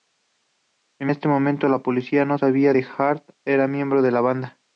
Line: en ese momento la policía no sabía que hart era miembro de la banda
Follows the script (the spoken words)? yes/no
yes